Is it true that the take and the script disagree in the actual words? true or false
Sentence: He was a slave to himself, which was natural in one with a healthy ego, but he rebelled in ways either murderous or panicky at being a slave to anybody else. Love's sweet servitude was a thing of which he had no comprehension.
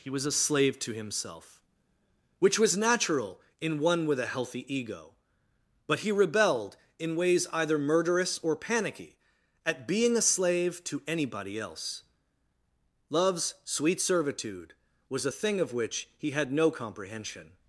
false